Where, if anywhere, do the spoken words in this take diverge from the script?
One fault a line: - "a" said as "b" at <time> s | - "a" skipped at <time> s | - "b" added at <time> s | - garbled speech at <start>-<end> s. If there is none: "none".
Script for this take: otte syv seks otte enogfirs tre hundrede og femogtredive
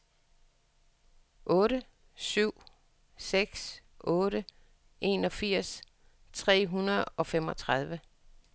none